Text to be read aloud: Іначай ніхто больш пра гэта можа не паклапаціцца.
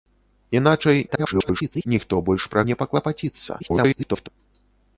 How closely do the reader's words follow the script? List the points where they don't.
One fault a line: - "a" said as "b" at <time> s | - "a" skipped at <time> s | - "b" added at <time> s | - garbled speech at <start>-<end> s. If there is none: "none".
- garbled speech at 1.1-1.8 s
- "гэта можа" skipped at 2.6 s
- garbled speech at 3.6-4.3 s